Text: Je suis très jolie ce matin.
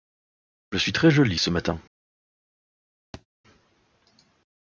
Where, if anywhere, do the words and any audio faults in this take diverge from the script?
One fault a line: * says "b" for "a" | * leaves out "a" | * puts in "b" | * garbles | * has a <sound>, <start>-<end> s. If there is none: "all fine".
* has a thud, 3.1-3.3 s